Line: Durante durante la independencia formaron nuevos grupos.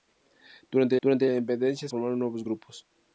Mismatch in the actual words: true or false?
false